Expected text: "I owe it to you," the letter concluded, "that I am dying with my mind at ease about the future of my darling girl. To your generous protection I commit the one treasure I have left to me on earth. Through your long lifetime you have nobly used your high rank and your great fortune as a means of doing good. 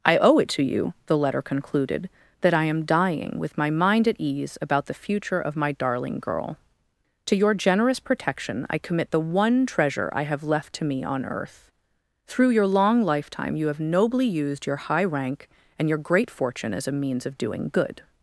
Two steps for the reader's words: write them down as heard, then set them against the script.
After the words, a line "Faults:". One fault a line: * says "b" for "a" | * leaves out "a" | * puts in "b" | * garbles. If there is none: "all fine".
"I owe it to you," the letter concluded, "that I am dying with my mind at ease about the future of my darling girl. To your generous protection I commit the one treasure I have left to me on earth. Through your long lifetime you have nobly used your high rank and your great fortune as a means of doing good.
Faults:
all fine